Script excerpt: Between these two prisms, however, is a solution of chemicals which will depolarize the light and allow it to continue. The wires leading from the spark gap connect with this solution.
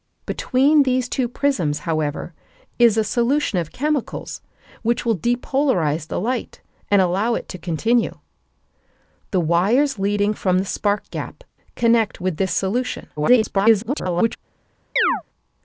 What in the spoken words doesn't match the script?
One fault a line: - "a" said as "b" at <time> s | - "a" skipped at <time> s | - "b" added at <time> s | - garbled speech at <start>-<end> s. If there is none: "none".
- garbled speech at 13.2-14.4 s